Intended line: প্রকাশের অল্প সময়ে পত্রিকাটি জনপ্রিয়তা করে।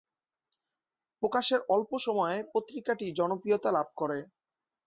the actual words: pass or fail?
fail